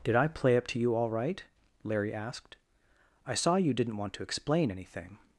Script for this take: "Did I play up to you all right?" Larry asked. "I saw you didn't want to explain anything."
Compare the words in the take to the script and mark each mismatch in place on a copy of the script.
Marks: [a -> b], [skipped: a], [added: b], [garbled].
"Did I play up to you all right?" Larry asked. "I saw you didn't want to explain anything."